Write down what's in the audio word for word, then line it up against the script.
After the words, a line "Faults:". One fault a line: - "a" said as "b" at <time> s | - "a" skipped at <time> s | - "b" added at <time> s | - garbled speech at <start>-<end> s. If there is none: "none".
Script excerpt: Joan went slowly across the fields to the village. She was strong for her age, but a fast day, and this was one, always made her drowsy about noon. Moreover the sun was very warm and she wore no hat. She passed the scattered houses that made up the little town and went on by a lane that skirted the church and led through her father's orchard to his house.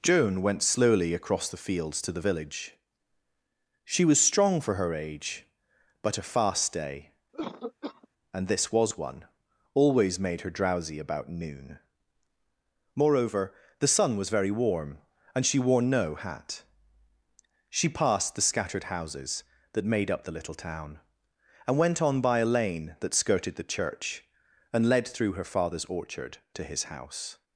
Joan went slowly across the fields to the village. She was strong for her age, but a fast day, and this was one, always made her drowsy about noon. Moreover the sun was very warm and she wore no hat. She passed the scattered houses that made up the little town and went on by a lane that skirted the church and led through her father's orchard to his house.
Faults:
none